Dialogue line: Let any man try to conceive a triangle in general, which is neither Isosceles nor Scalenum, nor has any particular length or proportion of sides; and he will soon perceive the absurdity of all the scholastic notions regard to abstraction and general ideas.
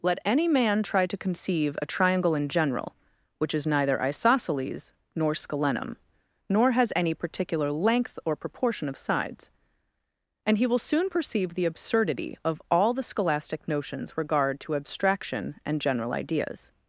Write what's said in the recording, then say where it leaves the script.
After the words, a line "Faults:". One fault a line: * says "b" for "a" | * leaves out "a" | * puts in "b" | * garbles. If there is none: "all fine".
Let any man try to conceive a triangle in general, which is neither Isosceles nor Scalenum, nor has any particular length or proportion of sides; and he will soon perceive the absurdity of all the scholastic notions regard to abstraction and general ideas.
Faults:
all fine